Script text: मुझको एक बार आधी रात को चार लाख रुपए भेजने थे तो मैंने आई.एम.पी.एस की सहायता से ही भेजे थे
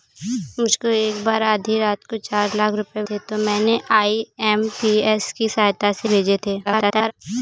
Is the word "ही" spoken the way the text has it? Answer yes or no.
no